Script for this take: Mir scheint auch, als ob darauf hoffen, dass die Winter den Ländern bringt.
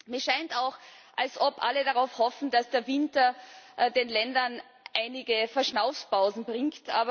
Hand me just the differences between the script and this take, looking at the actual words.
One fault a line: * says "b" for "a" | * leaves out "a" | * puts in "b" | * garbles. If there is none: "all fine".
* puts in "alle"
* says "der" for "die"
* puts in "einige Verschnaufpausen"